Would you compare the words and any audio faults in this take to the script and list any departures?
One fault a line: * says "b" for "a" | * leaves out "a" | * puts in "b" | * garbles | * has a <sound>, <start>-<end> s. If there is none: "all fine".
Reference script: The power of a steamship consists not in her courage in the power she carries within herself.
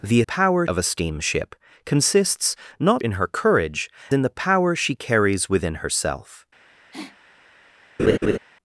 * has a sniff, 6.9-7.2 s
* has a laugh, 8.0-8.4 s